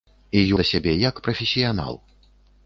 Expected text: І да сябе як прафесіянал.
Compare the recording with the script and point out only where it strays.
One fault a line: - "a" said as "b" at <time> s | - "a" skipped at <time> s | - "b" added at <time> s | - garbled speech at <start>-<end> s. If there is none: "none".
none